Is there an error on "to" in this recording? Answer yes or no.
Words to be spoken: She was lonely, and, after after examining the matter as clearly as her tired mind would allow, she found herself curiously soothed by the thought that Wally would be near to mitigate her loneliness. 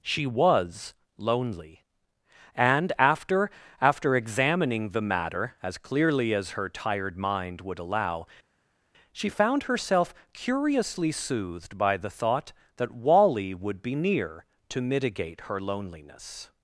no